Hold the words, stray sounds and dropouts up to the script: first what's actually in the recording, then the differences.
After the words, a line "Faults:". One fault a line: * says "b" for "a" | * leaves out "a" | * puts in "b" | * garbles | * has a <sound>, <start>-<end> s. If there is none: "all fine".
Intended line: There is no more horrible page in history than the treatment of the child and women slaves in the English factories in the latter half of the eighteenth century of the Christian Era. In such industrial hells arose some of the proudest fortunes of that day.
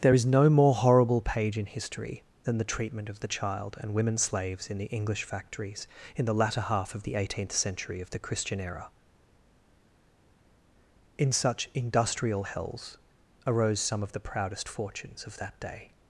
There is no more horrible page in history than the treatment of the child and women slaves in the English factories in the latter half of the eighteenth century of the Christian Era. In such industrial hells arose some of the proudest fortunes of that day.
Faults:
all fine